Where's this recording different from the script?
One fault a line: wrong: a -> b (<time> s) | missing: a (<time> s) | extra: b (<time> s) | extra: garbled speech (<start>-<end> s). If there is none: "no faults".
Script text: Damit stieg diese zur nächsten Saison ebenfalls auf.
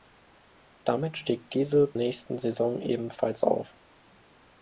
missing: zur (1.9 s)